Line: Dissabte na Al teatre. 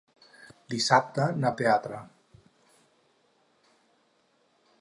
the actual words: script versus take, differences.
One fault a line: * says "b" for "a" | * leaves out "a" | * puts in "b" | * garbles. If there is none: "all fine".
all fine